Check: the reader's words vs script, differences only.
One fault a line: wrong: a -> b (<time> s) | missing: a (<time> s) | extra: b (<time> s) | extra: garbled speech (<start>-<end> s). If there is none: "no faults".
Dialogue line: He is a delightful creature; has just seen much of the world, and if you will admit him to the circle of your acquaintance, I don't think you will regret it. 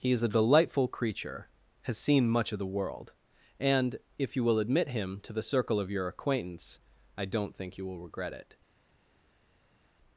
missing: just (1.9 s)